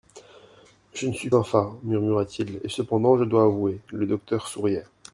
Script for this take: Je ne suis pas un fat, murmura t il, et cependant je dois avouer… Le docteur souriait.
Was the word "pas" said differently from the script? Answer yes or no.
yes